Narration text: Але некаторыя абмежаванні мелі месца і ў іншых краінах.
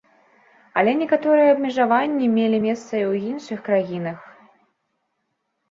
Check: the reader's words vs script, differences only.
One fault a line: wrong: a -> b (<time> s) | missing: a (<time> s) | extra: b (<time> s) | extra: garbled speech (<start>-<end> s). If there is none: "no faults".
no faults